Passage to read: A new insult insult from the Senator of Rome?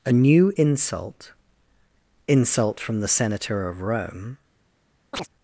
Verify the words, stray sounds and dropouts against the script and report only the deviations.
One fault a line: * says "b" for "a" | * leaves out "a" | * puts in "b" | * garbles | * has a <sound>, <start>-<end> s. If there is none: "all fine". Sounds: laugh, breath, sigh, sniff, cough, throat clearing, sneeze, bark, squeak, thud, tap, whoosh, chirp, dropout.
* has a chirp, 5.1-5.3 s